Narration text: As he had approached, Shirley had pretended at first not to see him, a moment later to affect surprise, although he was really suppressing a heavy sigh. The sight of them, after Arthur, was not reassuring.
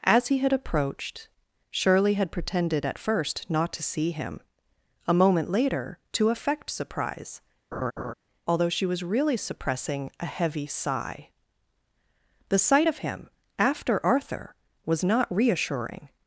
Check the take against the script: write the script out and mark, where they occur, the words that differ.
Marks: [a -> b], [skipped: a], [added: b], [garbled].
As he had approached, Shirley had pretended at first not to see him, a moment later to affect surprise, although [he -> she] was really suppressing a heavy sigh. The sight of [them, -> him] after Arthur, was not reassuring.